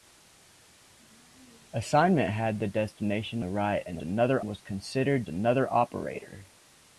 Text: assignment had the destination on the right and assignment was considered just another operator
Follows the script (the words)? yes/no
no